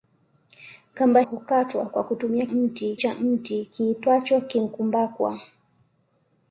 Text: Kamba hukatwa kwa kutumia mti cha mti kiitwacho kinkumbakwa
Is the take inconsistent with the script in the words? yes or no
no